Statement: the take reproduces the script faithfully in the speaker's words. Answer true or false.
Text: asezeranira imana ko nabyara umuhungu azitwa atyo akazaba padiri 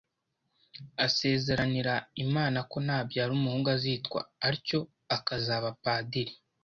true